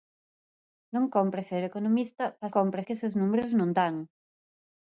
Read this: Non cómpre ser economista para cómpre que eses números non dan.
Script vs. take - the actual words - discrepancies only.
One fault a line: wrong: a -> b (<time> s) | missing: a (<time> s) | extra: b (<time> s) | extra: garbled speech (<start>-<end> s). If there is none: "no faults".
no faults